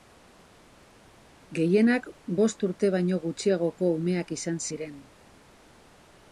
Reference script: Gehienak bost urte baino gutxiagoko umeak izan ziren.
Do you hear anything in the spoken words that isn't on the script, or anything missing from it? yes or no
no